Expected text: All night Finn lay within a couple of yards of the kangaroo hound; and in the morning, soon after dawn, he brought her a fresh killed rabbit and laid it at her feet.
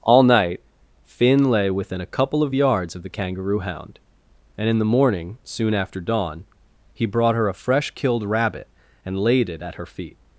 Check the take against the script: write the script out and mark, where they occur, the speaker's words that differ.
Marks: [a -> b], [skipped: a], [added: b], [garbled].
All night Finn lay within a couple of yards of the kangaroo hound; and in the morning, soon after dawn, he brought her a fresh killed rabbit and laid it at her feet.